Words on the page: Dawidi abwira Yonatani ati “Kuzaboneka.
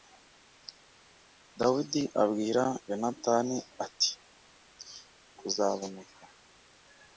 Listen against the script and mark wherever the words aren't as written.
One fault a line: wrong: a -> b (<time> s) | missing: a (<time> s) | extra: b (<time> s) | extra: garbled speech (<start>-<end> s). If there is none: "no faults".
no faults